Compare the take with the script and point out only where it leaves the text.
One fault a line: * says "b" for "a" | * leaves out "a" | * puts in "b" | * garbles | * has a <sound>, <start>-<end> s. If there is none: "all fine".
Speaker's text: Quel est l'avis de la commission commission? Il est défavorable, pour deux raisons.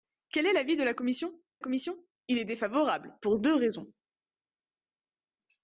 all fine